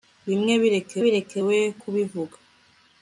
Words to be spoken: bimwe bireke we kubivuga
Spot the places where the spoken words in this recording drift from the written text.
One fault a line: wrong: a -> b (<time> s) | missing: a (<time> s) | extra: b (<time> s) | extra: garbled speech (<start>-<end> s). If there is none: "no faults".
extra: bireke (1.0 s)